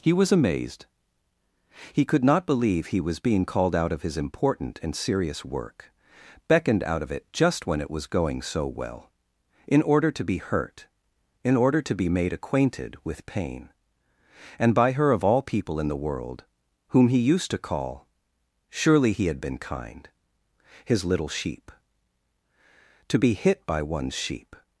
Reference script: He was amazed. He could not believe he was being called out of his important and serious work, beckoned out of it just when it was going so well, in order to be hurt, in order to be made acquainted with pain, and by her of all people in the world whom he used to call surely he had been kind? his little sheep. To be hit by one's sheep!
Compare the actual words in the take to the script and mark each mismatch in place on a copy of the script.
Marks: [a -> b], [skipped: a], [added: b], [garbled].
He was amazed. He could not believe he was being called out of his important and serious work, beckoned out of it just when it was going so well, in order to be hurt, in order to be made acquainted with pain, and by her of all people in the world whom he used to call surely he had been kind? his little sheep. To be hit by one's sheep!